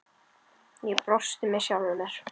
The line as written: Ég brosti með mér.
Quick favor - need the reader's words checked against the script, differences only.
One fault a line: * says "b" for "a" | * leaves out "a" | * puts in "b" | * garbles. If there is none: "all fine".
* puts in "sjálfri"